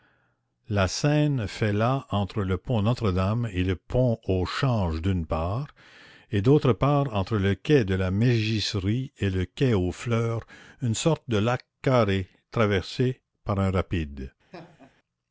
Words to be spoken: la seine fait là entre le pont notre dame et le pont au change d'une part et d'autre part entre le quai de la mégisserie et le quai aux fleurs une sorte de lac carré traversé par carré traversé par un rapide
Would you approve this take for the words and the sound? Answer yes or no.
no